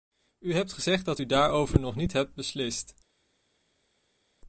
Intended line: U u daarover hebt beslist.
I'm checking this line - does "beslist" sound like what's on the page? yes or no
yes